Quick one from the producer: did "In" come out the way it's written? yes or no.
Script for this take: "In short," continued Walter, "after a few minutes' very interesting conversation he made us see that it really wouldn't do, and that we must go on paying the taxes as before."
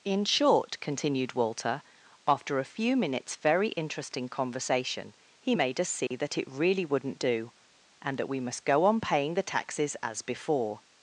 yes